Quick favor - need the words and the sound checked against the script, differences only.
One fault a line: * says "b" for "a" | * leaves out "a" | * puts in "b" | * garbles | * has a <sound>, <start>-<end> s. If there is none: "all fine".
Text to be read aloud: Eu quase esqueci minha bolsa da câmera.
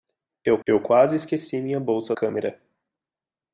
* puts in "eu"
* leaves out "da"